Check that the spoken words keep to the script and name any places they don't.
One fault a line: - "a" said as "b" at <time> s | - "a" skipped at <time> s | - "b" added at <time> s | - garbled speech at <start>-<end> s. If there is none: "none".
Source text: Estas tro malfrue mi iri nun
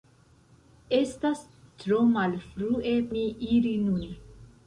none